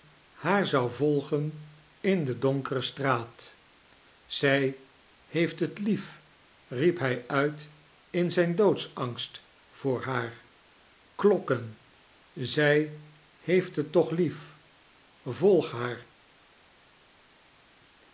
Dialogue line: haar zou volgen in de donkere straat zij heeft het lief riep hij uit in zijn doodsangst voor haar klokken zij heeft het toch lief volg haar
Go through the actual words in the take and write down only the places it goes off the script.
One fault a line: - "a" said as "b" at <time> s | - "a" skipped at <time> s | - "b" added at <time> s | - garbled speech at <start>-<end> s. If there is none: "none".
none